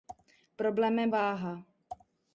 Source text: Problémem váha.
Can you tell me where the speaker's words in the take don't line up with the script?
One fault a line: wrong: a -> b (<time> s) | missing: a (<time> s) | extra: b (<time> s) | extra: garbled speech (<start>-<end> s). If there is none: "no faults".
no faults